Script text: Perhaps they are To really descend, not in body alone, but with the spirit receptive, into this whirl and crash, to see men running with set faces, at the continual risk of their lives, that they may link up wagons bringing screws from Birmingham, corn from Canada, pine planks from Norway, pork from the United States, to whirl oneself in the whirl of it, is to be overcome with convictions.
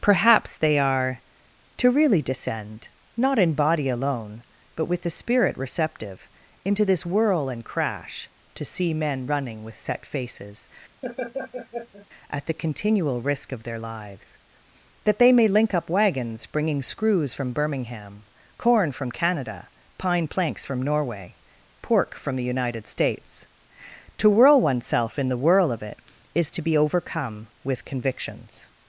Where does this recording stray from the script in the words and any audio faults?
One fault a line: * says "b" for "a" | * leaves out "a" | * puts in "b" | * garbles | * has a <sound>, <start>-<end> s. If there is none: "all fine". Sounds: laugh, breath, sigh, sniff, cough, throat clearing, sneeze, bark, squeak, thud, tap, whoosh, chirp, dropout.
* has a laugh, 11.0-12.1 s